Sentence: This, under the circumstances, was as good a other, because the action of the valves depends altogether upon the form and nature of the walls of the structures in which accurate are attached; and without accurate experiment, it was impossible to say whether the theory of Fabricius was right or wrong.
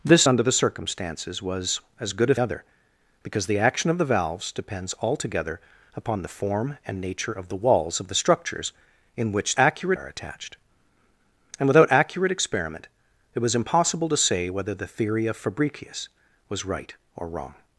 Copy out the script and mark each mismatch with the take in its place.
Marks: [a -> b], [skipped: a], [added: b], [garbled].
This, under the circumstances, was as good a other, because the action of the valves depends altogether upon the form and nature of the walls of the structures in which accurate are attached; and without accurate experiment, it was impossible to say whether the theory of Fabricius was right or wrong.